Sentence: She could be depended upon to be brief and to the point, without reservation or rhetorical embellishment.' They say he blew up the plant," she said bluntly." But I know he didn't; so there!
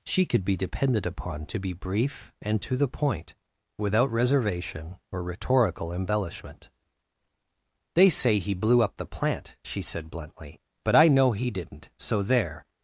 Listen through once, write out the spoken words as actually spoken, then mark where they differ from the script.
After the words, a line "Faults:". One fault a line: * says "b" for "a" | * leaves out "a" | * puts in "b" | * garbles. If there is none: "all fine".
She could be depended upon to be brief and to the point, without reservation or rhetorical embellishment.' They say he blew up the plant," she said bluntly." But I know he didn't; so there!
Faults:
all fine